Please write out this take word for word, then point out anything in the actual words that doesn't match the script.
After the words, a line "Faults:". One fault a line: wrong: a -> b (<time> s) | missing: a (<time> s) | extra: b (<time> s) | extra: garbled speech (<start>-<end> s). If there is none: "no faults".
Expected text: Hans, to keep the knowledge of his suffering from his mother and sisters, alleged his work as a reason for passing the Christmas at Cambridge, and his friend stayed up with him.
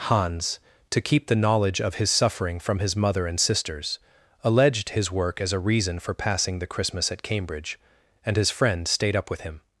Hans, to keep the knowledge of his suffering from his mother and sisters, alleged his work as a reason for passing the Christmas at Cambridge, and his friend stayed up with him.
Faults:
no faults